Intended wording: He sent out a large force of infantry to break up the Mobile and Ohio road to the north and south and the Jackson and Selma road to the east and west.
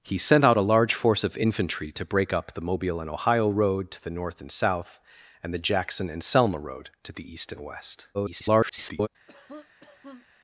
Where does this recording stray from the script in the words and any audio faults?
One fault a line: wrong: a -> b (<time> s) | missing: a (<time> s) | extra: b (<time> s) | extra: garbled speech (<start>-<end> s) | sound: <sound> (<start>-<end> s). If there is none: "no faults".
extra: garbled speech (8.1-9.1 s)
sound: cough (9.3-10.3 s)